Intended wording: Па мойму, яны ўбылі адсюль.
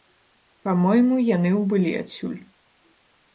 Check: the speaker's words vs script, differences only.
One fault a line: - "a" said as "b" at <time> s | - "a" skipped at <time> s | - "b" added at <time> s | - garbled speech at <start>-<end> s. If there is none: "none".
none